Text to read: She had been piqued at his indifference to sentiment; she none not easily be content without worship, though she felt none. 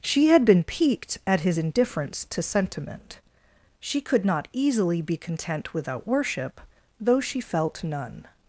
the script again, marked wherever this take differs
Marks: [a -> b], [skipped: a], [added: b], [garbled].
She had been piqued at his indifference to sentiment; she [none -> could] not easily be content without worship, though she felt none.